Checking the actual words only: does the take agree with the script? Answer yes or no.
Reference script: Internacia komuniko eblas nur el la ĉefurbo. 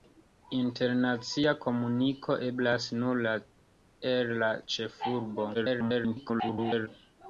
no